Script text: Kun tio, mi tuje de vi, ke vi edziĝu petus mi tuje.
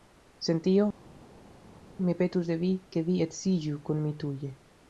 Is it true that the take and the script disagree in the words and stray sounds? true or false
true